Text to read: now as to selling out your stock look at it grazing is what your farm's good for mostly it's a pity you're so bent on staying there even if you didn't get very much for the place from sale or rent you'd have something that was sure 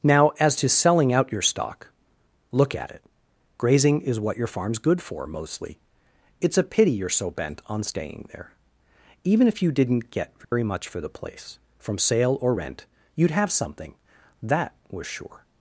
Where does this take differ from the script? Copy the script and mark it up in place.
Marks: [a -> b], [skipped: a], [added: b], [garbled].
now as to selling out your stock look at it grazing is what your farm's good for mostly it's a pity you're so bent on staying there even if you didn't get very much for the place from sale or rent you'd have something that was sure